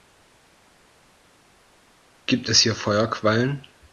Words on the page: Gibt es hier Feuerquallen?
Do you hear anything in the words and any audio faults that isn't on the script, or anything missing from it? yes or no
no